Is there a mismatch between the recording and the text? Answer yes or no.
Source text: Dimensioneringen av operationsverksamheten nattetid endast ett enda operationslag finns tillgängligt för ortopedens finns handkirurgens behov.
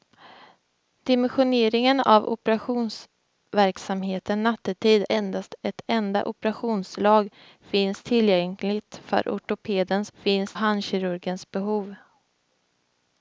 no